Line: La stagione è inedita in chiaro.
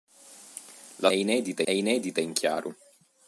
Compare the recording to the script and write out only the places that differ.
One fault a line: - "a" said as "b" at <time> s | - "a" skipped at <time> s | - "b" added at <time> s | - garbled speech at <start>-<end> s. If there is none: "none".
- "stagione" said as "inedita" at 1.1 s